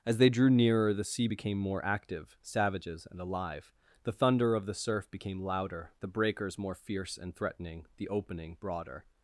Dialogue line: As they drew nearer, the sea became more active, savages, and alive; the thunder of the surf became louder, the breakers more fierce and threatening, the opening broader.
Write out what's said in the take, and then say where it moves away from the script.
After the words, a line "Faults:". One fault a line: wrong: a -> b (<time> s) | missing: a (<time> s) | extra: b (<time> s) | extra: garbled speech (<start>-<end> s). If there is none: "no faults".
As they drew nearer, the sea became more active, savages, and alive; the thunder of the surf became louder, the breakers more fierce and threatening, the opening broader.
Faults:
no faults